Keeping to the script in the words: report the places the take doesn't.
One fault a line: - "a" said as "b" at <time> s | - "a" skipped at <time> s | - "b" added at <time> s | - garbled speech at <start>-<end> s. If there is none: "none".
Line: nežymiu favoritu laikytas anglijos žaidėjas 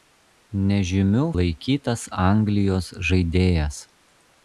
- "favoritu" skipped at 1.2 s